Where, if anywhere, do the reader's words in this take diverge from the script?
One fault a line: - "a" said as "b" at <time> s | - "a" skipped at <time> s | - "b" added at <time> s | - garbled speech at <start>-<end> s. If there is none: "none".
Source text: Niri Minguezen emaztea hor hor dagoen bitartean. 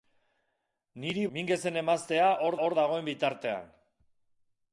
none